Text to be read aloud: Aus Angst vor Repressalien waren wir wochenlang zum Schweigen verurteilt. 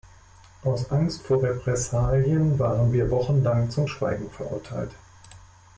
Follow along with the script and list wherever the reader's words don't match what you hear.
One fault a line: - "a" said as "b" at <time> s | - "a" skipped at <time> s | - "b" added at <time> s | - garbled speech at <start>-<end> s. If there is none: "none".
none